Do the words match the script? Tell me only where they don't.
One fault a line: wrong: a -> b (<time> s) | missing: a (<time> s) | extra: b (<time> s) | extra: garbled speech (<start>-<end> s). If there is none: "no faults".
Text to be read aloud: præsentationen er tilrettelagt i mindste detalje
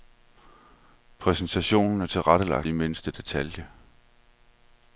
no faults